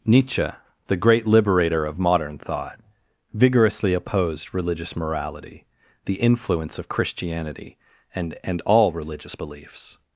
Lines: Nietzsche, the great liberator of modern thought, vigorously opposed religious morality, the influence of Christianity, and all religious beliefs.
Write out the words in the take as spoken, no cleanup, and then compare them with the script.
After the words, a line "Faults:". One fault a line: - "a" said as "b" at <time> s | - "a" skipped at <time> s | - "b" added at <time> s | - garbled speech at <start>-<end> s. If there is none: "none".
Nietzsche, the great liberator of modern thought, vigorously opposed religious morality, the influence of Christianity, and and all religious beliefs.
Faults:
- "and" added at 8.4 s